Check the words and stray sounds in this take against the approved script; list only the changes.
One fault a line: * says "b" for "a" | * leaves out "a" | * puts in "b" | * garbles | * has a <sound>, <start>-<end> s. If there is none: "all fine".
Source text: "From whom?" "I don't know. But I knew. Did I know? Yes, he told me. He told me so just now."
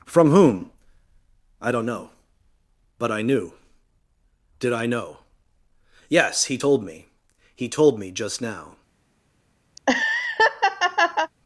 * leaves out "so"
* has a laugh, 9.8-11.3 s